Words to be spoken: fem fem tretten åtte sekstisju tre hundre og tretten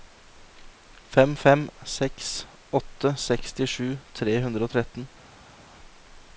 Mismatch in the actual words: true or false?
true